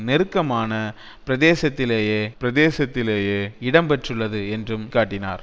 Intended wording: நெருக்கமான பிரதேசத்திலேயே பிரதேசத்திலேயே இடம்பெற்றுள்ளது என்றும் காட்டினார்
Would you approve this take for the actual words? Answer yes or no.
yes